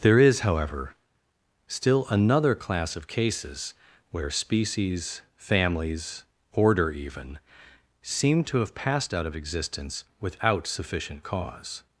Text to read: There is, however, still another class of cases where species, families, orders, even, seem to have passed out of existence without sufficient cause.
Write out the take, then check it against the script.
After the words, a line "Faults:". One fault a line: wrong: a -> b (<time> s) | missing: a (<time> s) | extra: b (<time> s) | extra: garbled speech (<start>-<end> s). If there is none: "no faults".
There is, however, still another class of cases where species, families, order, even, seem to have passed out of existence without sufficient cause.
Faults:
wrong: orders -> order (6.5 s)